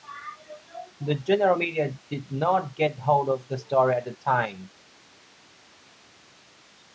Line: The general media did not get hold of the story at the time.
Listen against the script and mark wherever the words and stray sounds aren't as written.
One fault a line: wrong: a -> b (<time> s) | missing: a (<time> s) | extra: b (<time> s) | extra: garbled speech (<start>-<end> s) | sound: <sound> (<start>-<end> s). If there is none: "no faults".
no faults